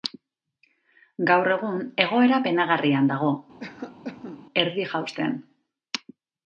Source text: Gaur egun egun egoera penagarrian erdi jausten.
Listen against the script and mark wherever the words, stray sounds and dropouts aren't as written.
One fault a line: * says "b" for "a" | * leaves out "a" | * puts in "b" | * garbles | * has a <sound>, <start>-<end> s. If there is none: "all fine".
* leaves out "egun"
* puts in "dago"
* has a cough, 3.6-4.5 s